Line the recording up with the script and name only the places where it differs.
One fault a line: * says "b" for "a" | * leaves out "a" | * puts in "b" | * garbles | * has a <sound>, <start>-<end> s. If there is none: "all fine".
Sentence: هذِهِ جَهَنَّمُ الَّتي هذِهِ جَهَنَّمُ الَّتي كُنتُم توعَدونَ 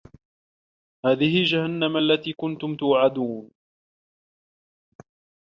* leaves out "هذِهِ جَهَنَّمُ الَّتي"